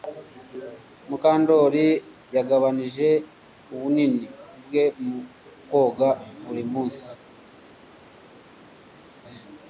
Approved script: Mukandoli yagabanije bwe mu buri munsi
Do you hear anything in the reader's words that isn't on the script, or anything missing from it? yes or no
yes